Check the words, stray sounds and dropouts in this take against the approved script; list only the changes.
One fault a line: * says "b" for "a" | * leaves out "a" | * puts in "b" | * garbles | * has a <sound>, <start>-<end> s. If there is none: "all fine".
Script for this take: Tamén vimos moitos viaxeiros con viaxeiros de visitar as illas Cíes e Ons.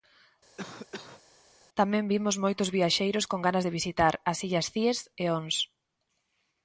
* has a cough, 0.6-1.2 s
* says "ganas" for "viaxeiros"